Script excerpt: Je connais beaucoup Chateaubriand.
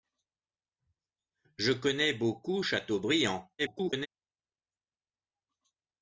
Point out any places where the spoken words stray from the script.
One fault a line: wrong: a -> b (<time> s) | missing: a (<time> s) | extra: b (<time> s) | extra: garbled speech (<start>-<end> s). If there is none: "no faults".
extra: garbled speech (3.6-4.1 s)